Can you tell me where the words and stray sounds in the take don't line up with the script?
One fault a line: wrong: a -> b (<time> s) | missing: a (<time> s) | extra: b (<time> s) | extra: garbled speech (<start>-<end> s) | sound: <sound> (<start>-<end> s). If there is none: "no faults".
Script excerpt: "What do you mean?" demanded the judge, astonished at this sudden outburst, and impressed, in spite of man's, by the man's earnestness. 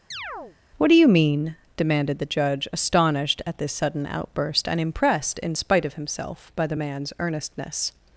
sound: chirp (0.1-0.6 s)
wrong: man's -> himself (5.9 s)